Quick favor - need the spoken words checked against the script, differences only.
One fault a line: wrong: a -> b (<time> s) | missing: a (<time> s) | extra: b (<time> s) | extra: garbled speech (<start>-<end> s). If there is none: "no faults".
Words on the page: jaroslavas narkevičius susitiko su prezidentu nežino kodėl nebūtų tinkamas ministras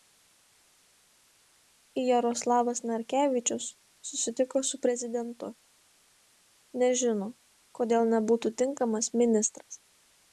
no faults